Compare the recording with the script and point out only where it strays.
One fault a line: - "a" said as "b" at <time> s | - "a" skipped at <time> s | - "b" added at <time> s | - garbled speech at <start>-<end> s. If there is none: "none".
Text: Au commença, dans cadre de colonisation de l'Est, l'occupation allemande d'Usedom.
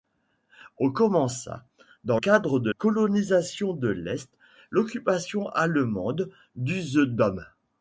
none